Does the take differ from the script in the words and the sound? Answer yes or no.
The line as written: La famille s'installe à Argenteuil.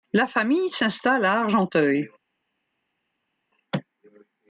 no